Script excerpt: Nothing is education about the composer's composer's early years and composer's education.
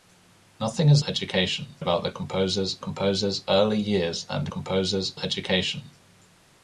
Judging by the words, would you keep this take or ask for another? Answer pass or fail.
pass